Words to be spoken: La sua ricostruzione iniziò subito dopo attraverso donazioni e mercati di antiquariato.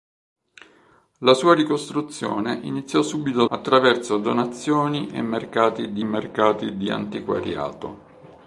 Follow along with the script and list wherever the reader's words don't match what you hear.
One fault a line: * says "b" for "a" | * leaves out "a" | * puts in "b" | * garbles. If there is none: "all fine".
* leaves out "dopo"
* puts in "mercati di"